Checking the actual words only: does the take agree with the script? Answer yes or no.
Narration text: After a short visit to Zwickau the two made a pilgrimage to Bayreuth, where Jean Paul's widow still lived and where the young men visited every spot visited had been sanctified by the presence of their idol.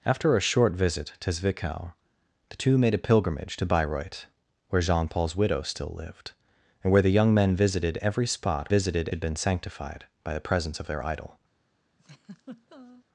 yes